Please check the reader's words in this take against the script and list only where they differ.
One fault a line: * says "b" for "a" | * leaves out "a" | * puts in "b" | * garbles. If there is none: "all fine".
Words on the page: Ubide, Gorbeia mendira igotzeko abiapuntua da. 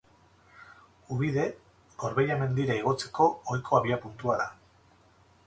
* puts in "ohiko"